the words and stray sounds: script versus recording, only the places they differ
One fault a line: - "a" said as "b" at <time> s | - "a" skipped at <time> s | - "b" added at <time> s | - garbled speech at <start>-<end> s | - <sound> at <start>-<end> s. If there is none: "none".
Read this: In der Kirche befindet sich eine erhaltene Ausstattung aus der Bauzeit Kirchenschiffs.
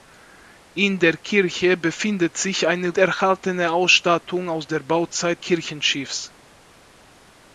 none